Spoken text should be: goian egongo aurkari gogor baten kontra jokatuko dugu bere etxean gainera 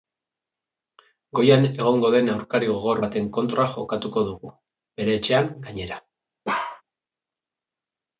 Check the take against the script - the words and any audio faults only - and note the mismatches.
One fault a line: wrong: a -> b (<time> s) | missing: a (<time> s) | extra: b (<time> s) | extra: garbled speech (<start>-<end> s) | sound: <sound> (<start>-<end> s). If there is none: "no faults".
extra: den (2.1 s)
sound: bark (6.4-6.8 s)